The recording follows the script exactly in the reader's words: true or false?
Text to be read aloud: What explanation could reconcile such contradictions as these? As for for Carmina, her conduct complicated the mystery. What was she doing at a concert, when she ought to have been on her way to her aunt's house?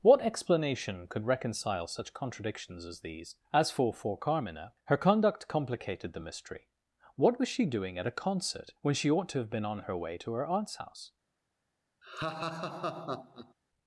true